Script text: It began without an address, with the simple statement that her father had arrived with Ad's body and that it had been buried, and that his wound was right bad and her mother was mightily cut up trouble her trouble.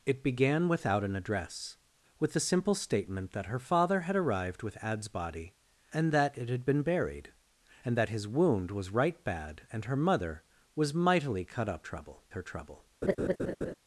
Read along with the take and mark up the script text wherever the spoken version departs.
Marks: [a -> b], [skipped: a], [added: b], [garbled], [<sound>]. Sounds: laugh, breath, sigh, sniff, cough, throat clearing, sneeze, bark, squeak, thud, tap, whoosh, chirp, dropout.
It began without an address, with the simple statement that her father had arrived with Ad's body and that it had been buried, and that his wound was right bad and her mother was mightily cut up trouble her trouble. [laugh]